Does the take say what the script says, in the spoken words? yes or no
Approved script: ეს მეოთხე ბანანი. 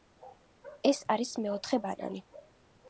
no